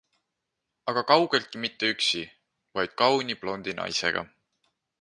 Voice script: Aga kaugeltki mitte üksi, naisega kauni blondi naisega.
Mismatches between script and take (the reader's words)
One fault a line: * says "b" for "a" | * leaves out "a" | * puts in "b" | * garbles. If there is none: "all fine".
* says "vaid" for "naisega"